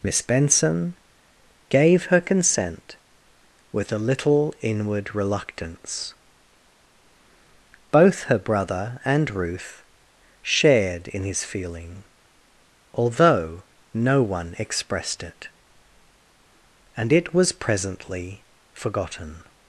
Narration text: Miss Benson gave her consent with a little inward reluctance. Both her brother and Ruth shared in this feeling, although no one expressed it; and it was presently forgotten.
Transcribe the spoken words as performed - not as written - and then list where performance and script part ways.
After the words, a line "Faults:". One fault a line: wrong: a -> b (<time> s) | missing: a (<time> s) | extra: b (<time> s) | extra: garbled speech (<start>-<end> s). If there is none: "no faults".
Miss Benson gave her consent with a little inward reluctance. Both her brother and Ruth shared in his feeling, although no one expressed it; and it was presently forgotten.
Faults:
wrong: this -> his (11.2 s)